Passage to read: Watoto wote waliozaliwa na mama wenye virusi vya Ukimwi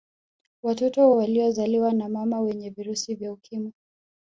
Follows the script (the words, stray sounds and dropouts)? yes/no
no